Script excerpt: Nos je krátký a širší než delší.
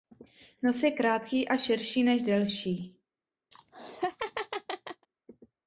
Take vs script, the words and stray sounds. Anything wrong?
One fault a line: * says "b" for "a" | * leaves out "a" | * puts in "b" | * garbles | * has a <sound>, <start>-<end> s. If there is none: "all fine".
* has a laugh, 3.5-5.1 s